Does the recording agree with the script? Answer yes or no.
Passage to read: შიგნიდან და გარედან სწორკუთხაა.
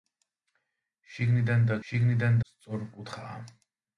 no